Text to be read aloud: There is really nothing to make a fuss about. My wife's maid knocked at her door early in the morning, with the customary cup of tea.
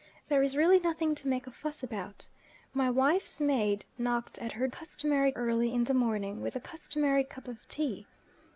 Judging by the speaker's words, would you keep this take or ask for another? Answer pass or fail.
fail